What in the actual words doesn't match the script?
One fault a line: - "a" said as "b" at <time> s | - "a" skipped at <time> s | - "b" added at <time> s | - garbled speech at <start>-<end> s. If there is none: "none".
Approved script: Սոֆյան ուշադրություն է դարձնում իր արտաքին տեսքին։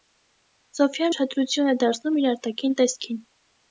none